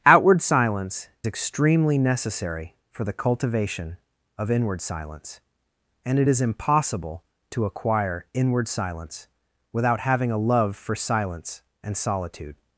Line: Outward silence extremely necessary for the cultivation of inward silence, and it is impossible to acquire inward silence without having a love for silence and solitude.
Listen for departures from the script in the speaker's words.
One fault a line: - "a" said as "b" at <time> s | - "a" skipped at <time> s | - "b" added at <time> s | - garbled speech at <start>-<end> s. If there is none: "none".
none